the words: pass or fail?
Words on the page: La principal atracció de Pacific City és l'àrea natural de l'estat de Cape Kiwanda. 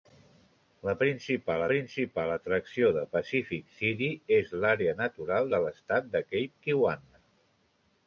fail